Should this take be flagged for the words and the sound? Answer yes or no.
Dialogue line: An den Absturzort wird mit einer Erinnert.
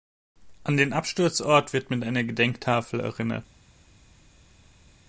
yes